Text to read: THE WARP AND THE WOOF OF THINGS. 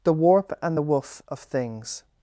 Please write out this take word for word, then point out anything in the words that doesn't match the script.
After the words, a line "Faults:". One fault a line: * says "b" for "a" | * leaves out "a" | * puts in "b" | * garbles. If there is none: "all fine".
THE WARP AND THE WOOF OF THINGS.
Faults:
all fine